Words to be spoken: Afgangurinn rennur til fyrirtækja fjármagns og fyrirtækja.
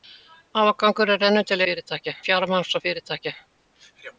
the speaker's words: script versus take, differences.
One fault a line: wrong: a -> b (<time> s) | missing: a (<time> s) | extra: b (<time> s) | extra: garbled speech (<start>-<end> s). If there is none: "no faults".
no faults